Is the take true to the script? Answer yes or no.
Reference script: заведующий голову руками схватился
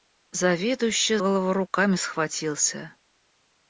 yes